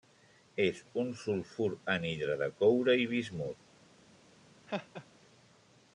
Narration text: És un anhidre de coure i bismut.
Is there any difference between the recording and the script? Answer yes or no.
yes